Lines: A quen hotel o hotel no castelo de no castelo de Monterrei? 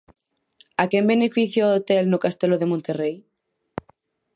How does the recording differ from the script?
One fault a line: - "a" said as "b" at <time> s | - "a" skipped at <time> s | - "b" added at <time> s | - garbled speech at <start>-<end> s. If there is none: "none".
- "hotel" said as "beneficia" at 1.1 s
- "no castelo de" skipped at 2.7 s